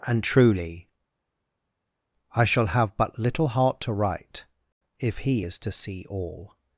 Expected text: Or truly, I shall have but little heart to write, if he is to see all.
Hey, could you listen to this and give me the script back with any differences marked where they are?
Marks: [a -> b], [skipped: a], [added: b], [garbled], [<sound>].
[Or -> And] truly, I shall have but little heart to write, if he is to see all.